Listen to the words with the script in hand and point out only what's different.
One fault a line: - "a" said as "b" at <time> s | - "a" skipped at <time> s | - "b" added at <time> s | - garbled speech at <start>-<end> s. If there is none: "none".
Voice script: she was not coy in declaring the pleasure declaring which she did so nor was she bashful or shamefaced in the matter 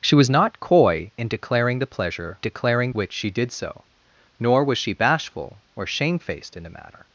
none